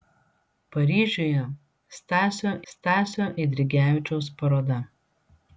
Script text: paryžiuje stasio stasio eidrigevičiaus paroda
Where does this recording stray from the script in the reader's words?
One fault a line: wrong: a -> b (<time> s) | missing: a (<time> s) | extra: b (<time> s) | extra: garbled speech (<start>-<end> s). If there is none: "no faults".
no faults